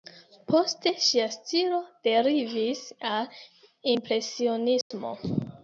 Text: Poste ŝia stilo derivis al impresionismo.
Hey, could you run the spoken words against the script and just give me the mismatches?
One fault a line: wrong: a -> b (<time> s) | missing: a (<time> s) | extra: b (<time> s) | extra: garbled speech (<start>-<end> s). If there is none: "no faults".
no faults